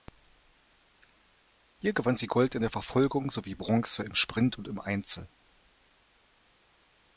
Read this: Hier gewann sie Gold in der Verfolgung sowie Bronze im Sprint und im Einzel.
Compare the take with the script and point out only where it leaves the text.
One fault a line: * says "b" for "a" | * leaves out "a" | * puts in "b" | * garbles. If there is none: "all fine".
all fine